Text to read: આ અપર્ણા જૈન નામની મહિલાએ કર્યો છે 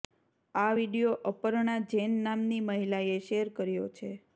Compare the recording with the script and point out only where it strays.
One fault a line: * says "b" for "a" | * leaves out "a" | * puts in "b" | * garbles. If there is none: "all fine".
* puts in "વીડિયો"
* puts in "શેર"